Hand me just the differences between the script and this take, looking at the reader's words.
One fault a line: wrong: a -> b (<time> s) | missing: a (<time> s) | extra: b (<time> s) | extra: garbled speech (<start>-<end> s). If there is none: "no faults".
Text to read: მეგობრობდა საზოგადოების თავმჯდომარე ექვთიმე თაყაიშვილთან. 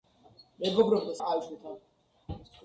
missing: საზოგადოების თავმჯდომარე ექვთიმე (1.1 s)